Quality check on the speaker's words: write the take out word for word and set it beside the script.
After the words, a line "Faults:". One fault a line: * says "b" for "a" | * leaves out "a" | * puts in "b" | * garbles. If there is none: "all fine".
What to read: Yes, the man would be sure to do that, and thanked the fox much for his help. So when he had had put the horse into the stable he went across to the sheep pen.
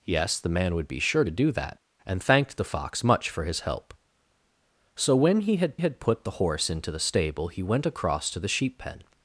Yes, the man would be sure to do that, and thanked the fox much for his help. So when he had had put the horse into the stable he went across to the sheep pen.
Faults:
all fine